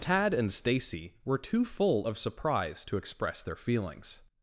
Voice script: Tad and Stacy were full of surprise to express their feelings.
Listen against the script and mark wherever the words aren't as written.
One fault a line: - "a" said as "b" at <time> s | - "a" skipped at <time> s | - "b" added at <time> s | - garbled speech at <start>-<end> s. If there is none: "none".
- "too" added at 1.4 s